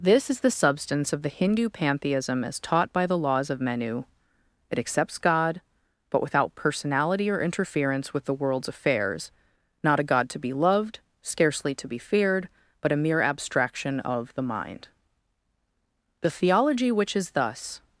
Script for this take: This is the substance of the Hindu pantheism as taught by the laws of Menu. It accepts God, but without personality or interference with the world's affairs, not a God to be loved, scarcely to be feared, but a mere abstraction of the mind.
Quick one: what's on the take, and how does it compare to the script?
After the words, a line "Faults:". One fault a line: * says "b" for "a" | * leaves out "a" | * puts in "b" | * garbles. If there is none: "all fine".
This is the substance of the Hindu pantheism as taught by the laws of Menu. It accepts God, but without personality or interference with the world's affairs, not a God to be loved, scarcely to be feared, but a mere abstraction of the mind. The theology which is thus
Faults:
* puts in "The theology which is thus"